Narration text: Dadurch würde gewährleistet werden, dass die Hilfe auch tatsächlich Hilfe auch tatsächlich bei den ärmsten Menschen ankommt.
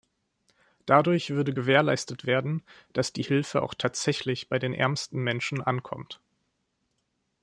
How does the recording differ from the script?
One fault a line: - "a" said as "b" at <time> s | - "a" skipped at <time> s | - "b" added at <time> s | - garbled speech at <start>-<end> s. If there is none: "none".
- "Hilfe auch tatsächlich" skipped at 4.5 s